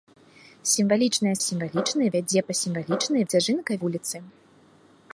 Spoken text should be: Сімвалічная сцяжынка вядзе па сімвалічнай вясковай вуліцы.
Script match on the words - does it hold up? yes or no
no